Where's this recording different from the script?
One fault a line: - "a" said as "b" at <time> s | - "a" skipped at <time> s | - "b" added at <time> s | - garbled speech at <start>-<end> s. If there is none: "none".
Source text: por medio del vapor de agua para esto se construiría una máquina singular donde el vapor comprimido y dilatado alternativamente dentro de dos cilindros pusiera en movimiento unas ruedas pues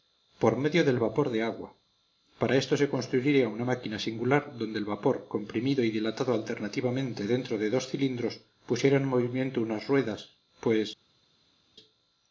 none